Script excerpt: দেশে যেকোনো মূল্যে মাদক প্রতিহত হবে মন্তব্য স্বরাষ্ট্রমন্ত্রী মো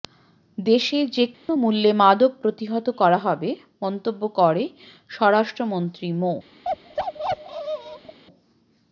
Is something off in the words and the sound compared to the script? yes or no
yes